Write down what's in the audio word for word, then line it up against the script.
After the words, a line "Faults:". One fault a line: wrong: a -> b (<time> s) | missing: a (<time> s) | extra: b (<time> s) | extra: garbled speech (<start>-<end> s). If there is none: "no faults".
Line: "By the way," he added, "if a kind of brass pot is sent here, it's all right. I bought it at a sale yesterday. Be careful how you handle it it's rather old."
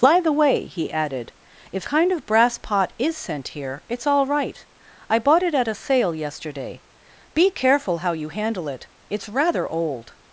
"By the way," he added, "if kind of brass pot is sent here, it's all right. I bought it at a sale yesterday. Be careful how you handle it it's rather old."
Faults:
missing: a (1.9 s)